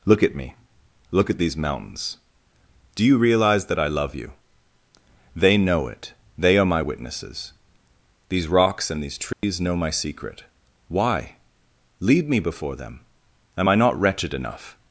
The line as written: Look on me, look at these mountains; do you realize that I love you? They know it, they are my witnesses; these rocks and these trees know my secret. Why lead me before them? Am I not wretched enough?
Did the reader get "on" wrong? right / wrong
wrong